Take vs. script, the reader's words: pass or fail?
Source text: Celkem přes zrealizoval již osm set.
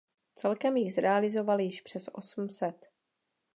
fail